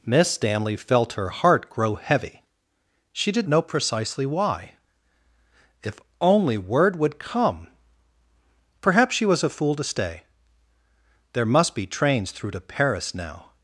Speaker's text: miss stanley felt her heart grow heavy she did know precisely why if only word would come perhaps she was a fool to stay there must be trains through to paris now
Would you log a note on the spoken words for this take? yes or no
no